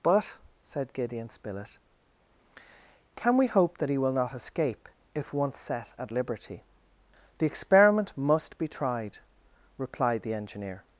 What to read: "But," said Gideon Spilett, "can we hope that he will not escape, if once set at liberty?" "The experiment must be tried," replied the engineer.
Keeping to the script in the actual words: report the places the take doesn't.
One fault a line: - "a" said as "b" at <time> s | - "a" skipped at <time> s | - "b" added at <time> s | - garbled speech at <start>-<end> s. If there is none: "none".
none